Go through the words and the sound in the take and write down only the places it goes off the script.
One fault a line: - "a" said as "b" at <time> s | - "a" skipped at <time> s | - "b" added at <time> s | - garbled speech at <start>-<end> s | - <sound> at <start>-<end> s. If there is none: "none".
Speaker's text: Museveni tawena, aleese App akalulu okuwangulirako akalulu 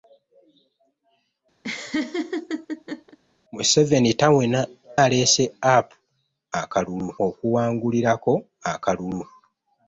- laugh at 1.6-3.2 s